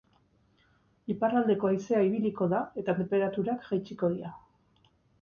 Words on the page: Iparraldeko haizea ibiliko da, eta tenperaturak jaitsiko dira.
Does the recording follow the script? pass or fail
pass